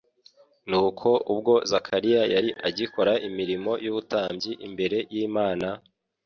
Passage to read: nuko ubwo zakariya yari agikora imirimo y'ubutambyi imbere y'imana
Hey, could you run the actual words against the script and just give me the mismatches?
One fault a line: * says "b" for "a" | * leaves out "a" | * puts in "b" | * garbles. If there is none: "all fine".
all fine